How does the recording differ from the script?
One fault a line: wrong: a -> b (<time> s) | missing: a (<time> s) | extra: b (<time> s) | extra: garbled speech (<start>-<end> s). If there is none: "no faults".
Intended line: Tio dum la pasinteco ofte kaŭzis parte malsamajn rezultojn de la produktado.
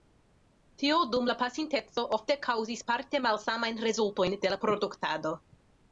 no faults